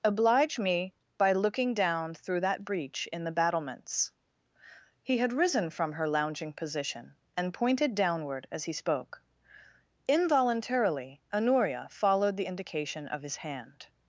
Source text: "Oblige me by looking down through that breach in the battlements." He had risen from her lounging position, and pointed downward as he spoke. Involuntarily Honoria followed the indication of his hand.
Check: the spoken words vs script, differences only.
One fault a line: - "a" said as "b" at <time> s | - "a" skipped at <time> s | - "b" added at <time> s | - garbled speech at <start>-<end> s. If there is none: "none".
none